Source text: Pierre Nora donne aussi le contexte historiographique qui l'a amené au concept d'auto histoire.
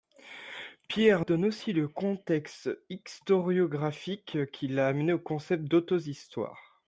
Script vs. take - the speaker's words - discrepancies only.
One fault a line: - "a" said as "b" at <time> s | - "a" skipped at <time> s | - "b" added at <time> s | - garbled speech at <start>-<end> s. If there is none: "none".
- "Nora" skipped at 1.2 s